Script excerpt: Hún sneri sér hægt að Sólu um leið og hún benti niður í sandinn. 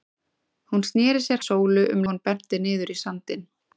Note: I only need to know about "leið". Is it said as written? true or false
false